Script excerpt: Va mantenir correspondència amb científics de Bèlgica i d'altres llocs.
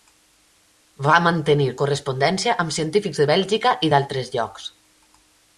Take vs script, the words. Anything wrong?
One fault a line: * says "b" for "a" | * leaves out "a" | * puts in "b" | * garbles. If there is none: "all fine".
all fine